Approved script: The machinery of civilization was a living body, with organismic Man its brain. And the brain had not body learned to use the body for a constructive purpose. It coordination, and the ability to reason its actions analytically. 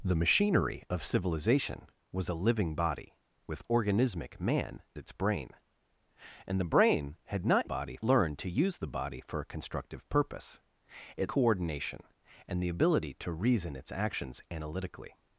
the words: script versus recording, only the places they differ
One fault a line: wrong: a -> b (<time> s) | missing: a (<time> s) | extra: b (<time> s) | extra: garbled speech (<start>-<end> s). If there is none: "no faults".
no faults